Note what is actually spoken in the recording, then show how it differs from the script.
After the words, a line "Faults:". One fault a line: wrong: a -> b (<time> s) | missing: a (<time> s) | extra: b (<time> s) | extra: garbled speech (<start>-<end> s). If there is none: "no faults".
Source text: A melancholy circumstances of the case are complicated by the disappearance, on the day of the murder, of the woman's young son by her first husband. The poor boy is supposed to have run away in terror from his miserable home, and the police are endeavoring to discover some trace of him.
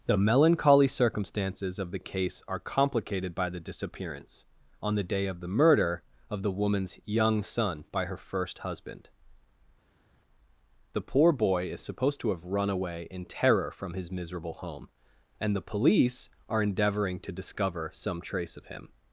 The melancholy circumstances of the case are complicated by the disappearance, on the day of the murder, of the woman's young son by her first husband. The poor boy is supposed to have run away in terror from his miserable home, and the police are endeavoring to discover some trace of him.
Faults:
wrong: A -> The (0.1 s)